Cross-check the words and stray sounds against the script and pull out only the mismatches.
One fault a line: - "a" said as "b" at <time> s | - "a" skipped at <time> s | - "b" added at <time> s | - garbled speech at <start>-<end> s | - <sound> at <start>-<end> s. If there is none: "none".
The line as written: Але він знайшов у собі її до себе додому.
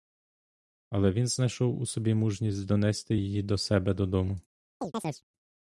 - "мужність донести" added at 2.1 s
- chirp at 4.8-5.2 s